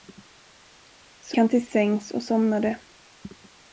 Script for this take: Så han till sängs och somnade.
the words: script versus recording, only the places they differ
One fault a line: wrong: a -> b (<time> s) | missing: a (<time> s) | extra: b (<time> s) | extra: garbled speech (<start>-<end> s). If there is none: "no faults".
no faults